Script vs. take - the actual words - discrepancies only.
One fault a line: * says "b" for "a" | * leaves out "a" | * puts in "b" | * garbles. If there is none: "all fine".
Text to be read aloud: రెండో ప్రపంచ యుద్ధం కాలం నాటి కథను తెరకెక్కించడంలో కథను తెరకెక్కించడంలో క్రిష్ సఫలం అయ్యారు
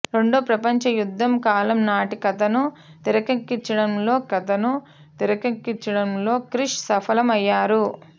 all fine